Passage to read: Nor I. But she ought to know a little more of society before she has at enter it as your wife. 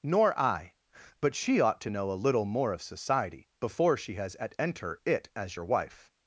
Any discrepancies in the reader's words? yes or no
no